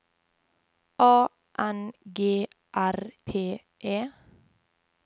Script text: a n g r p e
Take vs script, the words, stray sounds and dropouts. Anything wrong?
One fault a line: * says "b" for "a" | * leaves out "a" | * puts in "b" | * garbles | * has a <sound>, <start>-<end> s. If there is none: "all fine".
all fine